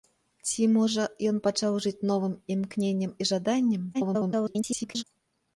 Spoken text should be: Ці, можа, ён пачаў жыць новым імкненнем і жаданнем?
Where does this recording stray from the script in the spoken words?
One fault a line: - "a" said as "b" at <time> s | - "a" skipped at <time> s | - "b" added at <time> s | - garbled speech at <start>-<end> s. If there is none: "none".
- garbled speech at 3.9-5.0 s